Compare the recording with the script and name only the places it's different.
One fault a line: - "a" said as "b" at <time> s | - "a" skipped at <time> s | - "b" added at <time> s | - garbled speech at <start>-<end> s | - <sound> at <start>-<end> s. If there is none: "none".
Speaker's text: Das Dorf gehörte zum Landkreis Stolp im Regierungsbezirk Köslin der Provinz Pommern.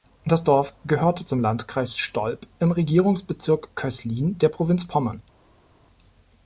none